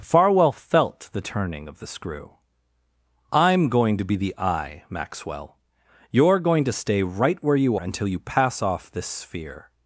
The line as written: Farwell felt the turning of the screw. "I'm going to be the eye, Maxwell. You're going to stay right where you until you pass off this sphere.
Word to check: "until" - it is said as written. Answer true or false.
true